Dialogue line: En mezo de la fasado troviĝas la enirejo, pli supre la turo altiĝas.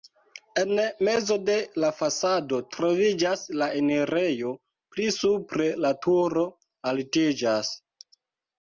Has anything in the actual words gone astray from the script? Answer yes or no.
no